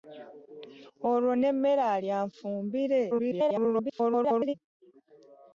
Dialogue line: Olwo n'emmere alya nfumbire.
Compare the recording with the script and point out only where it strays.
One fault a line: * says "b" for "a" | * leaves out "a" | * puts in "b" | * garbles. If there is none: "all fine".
* garbles